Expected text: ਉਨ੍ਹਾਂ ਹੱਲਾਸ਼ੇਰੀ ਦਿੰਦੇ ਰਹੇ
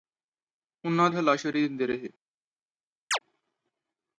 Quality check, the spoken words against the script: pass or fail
pass